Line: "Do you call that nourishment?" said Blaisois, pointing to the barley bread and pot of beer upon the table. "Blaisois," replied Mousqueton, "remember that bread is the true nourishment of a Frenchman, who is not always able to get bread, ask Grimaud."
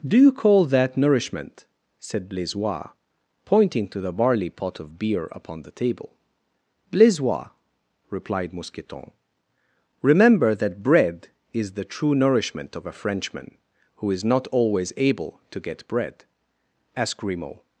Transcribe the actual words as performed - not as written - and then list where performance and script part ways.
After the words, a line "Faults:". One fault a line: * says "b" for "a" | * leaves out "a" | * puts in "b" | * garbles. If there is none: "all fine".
"Do you call that nourishment?" said Blaisois, pointing to the barley pot of beer upon the table. "Blaisois," replied Mousqueton, "remember that bread is the true nourishment of a Frenchman, who is not always able to get bread, ask Grimaud."
Faults:
* leaves out "bread and"